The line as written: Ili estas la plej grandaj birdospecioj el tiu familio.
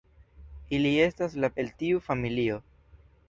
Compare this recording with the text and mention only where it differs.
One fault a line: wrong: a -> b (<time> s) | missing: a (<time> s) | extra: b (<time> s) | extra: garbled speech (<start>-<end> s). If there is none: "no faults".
missing: plej grandaj birdospecioj (1.5 s)